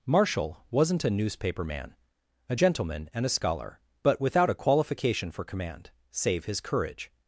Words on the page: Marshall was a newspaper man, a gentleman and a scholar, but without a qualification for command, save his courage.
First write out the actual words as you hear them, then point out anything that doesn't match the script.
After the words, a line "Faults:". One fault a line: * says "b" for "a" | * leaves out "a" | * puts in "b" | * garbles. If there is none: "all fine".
Marshall wasn't a newspaper man, a gentleman and a scholar, but without a qualification for command, save his courage.
Faults:
* says "wasn't" for "was"